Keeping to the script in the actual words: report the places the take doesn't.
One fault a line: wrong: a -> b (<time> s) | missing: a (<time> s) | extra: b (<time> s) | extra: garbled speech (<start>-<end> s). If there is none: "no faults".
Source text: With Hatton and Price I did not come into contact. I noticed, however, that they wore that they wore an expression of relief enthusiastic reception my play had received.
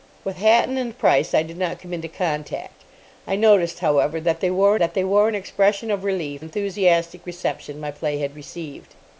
no faults